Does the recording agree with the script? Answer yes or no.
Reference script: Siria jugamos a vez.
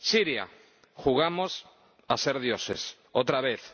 no